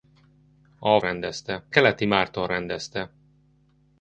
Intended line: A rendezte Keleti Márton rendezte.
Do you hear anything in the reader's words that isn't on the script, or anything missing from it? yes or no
no